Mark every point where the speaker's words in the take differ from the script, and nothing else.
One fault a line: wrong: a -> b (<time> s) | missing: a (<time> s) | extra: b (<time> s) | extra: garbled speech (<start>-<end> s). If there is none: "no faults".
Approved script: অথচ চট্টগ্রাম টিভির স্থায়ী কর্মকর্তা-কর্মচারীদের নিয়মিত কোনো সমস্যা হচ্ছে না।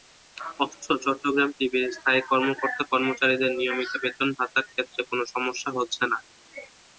extra: বেতন ভাতার ক্ষেত্রে (4.0 s)